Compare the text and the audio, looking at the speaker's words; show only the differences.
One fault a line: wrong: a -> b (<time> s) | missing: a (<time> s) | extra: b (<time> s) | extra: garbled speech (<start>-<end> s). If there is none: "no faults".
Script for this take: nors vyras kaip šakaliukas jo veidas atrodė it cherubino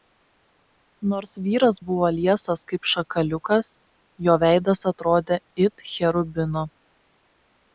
extra: buvo liesas (1.9 s)